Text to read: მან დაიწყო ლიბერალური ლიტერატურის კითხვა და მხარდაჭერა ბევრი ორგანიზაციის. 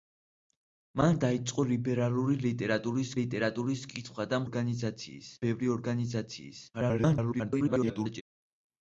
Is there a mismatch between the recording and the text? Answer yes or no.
yes